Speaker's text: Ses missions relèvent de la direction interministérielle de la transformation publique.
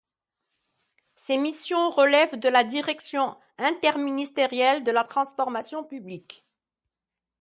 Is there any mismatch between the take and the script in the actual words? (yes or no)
no